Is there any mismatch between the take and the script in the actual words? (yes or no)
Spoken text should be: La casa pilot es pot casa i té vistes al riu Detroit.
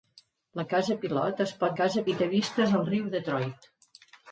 no